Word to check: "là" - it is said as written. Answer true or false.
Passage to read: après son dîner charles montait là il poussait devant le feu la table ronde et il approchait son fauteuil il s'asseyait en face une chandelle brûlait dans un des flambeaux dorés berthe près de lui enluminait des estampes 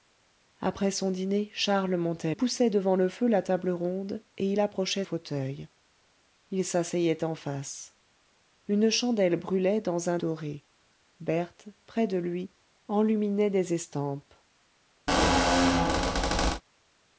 false